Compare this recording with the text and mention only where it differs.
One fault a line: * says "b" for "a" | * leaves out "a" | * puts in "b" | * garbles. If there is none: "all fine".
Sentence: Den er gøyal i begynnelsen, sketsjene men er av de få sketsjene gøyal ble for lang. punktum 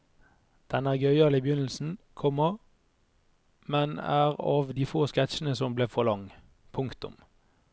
* says "komma" for "sketsjene"
* says "som" for "gøyal"